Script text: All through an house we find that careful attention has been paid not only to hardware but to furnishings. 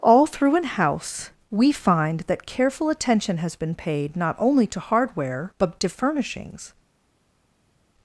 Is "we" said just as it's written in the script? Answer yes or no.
yes